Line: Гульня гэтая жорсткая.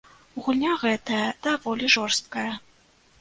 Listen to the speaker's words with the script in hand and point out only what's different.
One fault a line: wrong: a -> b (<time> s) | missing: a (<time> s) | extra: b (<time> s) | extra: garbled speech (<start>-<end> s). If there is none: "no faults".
extra: даволі (1.5 s)